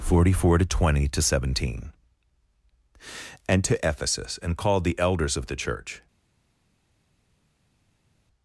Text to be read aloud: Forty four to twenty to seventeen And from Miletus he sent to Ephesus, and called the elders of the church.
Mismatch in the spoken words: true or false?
true